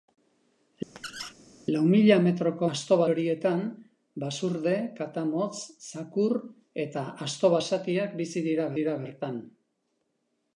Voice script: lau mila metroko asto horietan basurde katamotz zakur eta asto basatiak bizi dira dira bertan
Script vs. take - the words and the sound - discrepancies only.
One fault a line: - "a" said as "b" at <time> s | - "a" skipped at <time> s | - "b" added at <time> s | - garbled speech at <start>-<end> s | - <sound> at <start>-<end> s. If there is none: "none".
- squeak at 1.0-1.3 s